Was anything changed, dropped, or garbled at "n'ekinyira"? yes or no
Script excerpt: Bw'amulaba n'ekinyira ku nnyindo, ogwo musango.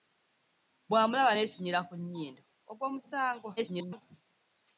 no